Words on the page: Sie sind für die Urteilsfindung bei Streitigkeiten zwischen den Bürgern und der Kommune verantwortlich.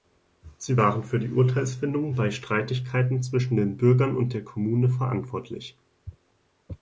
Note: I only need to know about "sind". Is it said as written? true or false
false